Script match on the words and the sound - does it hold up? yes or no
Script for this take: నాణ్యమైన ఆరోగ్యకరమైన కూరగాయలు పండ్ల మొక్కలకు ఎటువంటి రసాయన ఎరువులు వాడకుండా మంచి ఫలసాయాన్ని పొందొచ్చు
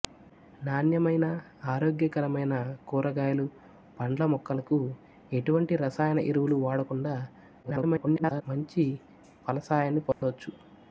no